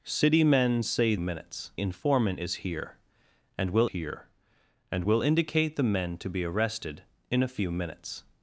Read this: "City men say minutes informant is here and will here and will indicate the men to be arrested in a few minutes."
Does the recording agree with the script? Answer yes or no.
yes